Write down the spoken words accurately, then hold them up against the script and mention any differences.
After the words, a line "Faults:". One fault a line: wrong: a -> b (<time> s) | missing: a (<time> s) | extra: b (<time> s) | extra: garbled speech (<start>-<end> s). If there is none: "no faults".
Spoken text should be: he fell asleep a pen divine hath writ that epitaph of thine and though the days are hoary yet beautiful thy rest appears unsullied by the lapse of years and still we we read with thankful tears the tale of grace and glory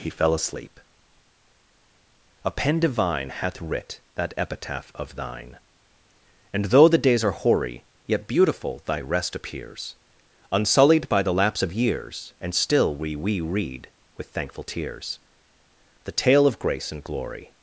he fell asleep a pen divine hath writ that epitaph of thine and though the days are hoary yet beautiful thy rest appears unsullied by the lapse of years and still we we read with thankful tears the tale of grace and glory
Faults:
no faults